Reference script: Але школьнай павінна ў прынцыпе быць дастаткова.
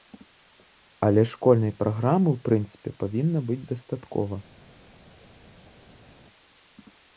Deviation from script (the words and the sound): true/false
true